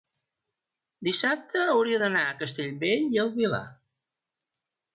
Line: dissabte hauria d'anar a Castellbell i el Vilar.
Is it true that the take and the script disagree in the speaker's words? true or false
false